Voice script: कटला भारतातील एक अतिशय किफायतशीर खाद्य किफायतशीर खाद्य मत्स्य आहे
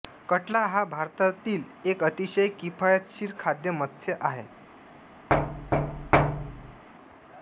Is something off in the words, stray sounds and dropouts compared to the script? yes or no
yes